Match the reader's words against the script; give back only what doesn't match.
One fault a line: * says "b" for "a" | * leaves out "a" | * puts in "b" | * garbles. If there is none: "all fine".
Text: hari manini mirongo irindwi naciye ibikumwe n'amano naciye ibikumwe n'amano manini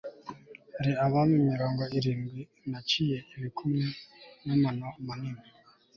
* says "abami" for "manini"
* leaves out "naciye ibikumwe n'amano"